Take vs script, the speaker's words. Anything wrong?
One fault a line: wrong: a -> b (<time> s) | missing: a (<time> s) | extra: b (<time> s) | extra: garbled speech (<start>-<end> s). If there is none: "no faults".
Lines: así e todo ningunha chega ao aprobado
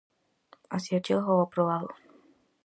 missing: todo ningunha (1.0 s)